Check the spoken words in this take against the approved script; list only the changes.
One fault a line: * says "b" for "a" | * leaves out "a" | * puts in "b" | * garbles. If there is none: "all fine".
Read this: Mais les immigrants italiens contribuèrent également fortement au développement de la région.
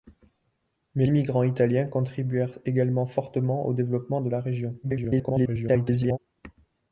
* leaves out "les"
* garbles